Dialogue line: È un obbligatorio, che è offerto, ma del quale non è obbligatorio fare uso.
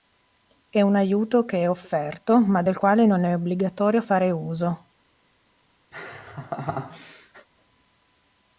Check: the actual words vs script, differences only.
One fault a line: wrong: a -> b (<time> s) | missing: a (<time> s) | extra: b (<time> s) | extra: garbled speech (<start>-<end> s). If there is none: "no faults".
wrong: obbligatorio -> aiuto (0.9 s)